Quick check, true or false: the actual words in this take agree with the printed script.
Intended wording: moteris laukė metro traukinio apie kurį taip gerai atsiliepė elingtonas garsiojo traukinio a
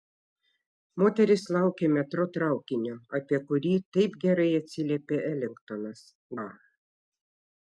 false